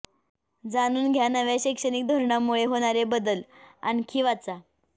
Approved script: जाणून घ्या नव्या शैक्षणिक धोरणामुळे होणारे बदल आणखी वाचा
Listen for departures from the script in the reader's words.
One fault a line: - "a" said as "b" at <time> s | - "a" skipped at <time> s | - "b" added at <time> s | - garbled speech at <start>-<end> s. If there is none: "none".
none